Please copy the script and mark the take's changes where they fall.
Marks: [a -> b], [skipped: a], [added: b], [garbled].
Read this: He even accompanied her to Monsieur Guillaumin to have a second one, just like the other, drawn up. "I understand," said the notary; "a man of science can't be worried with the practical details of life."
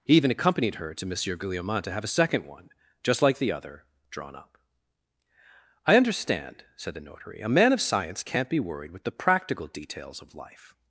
He even accompanied her to Monsieur Guillaumin to have a second one, just like the other, drawn up. "I understand," said the notary; "a man of science can't be worried with the practical details of life."